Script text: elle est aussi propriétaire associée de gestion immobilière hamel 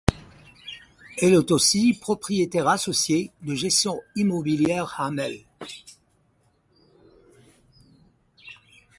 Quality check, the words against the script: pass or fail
pass